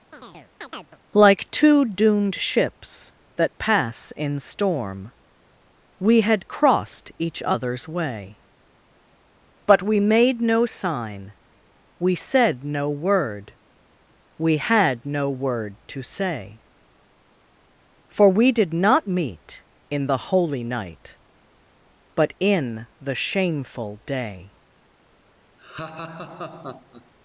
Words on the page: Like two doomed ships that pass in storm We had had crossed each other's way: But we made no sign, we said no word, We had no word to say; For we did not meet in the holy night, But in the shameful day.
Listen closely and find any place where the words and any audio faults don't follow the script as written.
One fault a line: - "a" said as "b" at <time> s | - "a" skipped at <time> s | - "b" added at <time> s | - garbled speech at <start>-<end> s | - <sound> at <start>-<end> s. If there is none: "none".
- chirp at 0.1-1.0 s
- "had" skipped at 6.5 s
- laugh at 25.6-27.1 s